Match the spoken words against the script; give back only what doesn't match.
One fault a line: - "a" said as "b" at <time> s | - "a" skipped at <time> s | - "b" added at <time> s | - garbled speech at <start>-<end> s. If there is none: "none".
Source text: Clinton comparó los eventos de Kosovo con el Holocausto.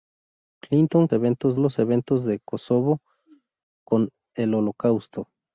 - "comparó" said as "eventos" at 1.1 s